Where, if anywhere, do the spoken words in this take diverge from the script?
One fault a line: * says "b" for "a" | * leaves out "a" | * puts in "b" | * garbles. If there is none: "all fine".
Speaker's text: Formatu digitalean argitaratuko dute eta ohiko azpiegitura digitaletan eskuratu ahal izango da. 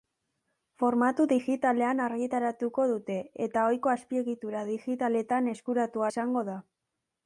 * leaves out "ahal"